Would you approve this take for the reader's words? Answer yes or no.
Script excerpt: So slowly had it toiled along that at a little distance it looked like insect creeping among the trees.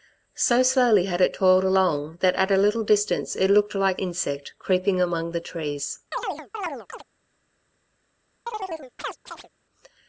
yes